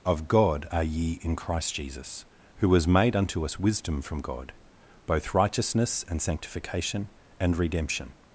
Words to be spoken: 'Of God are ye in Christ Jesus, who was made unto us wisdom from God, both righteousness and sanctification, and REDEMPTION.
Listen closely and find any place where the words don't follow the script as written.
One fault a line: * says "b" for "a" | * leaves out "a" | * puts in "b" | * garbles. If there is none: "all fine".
all fine